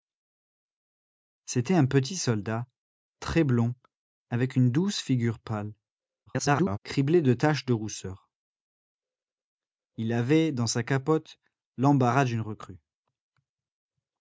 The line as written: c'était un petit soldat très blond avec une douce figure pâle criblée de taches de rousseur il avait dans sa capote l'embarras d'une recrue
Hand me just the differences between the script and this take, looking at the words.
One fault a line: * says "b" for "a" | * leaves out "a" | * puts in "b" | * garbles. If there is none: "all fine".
* garbles